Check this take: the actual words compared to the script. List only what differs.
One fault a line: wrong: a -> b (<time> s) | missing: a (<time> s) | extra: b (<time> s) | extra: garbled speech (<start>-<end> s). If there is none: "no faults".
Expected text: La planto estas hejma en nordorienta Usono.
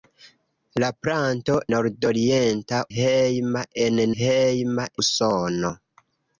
wrong: estas -> nordorienta (1.7 s)
wrong: nordorienta -> hejma (4.2 s)